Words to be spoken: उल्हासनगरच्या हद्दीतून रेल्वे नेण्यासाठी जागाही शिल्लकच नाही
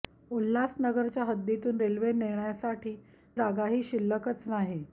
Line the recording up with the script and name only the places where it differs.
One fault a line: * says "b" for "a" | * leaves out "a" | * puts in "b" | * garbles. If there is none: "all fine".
all fine